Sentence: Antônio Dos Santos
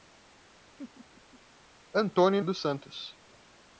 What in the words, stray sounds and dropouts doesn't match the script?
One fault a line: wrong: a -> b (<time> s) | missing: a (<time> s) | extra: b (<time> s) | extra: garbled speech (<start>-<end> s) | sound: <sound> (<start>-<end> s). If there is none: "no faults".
sound: laugh (0.8-1.4 s)